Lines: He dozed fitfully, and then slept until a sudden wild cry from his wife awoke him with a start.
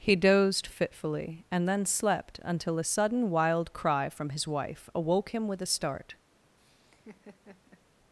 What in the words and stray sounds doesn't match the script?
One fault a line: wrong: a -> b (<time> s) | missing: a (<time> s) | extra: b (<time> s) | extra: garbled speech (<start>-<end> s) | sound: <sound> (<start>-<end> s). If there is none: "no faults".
sound: laugh (6.6-7.8 s)